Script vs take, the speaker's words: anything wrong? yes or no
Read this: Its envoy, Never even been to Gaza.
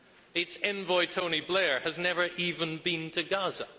yes